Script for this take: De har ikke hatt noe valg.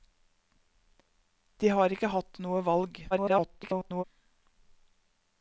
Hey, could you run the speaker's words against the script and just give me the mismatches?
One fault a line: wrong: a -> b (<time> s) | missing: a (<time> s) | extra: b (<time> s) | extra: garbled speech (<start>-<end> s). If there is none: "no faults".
extra: garbled speech (3.1-4.0 s)